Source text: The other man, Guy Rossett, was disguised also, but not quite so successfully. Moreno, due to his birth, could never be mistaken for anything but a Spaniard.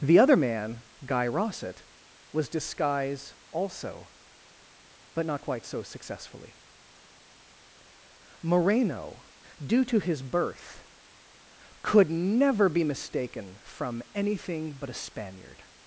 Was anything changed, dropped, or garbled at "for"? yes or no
yes